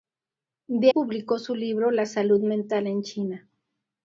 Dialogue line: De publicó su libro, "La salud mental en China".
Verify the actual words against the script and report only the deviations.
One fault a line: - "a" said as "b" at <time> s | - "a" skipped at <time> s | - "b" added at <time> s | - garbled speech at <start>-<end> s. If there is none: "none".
none